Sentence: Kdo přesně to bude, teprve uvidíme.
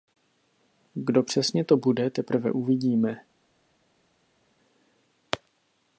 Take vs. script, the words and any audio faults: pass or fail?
pass